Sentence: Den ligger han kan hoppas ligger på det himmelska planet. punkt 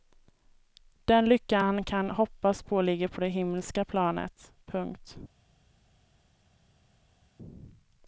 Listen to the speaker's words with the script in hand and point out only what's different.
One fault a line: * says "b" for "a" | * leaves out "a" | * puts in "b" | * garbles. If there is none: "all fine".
* says "lycka" for "ligger"
* puts in "på"